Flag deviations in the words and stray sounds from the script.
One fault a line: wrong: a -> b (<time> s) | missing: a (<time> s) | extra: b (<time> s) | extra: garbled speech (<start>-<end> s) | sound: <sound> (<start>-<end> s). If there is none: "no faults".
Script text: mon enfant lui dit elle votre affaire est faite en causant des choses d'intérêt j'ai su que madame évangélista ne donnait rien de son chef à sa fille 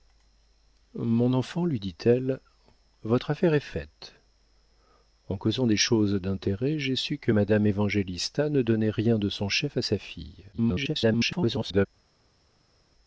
extra: garbled speech (10.5-11.9 s)